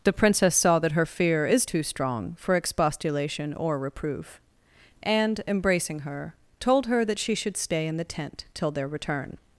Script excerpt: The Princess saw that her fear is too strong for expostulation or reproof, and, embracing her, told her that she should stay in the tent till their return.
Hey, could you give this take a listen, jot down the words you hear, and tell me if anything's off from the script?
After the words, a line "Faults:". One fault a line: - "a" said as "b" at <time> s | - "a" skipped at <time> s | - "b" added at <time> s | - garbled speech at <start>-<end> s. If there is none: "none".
The Princess saw that her fear is too strong for expostulation or reproof, and, embracing her, told her that she should stay in the tent till their return.
Faults:
none